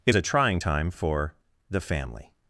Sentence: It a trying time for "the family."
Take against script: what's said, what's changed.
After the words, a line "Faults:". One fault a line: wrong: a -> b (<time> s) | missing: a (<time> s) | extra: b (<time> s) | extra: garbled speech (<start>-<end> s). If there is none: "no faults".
It a trying time for "the family."
Faults:
no faults